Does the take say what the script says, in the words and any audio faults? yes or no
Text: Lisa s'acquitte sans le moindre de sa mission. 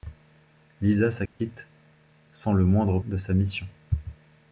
no